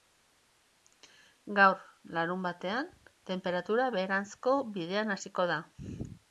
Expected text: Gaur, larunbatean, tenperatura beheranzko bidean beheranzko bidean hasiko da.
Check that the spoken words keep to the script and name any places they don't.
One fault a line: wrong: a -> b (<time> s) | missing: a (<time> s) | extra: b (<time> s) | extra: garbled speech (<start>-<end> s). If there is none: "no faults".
missing: beheranzko bidean (5.2 s)